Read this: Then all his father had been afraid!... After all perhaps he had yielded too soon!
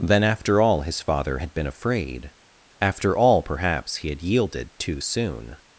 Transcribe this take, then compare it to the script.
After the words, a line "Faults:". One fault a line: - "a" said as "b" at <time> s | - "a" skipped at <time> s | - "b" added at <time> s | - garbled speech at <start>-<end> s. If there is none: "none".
Then after all his father had been afraid!... After all perhaps he had yielded too soon!
Faults:
- "after" added at 0.2 s